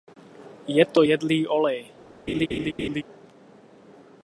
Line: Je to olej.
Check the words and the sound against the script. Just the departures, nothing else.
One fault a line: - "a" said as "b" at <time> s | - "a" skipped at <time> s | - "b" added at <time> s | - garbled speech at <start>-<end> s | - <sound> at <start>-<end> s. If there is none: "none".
- "jedlý" added at 1.0 s
- laugh at 2.3-3.0 s